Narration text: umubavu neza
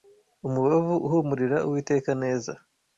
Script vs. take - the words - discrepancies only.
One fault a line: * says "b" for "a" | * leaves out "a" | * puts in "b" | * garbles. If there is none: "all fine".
* puts in "uhumurira Uwiteka"